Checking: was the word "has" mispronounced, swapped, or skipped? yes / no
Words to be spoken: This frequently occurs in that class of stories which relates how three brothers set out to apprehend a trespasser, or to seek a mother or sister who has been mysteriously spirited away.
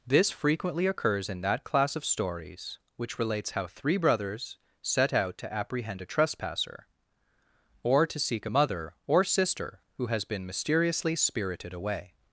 no